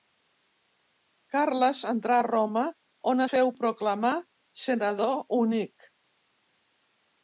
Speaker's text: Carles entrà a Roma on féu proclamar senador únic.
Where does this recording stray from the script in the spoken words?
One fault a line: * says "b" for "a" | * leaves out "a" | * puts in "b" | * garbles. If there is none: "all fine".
all fine